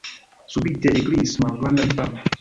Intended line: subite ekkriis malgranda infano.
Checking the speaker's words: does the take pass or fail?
pass